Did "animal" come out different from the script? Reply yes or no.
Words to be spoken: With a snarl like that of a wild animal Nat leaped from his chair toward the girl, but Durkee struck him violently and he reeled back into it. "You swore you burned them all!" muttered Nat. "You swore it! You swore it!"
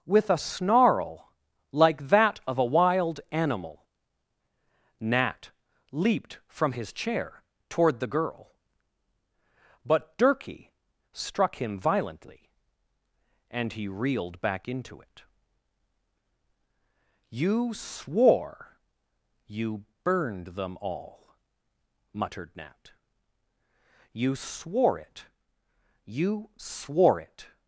no